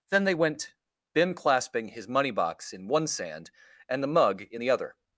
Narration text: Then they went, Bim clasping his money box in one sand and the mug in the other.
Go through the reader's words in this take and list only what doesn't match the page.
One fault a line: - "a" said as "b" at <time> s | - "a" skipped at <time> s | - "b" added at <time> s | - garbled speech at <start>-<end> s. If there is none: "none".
none